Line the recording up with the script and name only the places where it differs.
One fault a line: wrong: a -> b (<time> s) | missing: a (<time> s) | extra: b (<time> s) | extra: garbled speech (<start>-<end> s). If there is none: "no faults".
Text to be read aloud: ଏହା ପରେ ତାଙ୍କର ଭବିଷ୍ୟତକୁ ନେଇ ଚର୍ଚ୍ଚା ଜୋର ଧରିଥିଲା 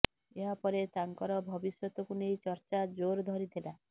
no faults